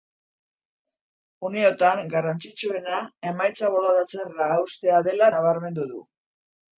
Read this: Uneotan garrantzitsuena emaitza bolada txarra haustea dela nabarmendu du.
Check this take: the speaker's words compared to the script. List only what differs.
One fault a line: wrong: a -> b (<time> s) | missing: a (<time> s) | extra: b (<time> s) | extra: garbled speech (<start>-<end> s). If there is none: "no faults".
no faults